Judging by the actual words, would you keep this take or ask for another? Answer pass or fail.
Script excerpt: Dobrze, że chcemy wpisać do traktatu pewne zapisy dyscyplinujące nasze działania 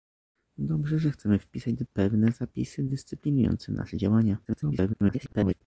fail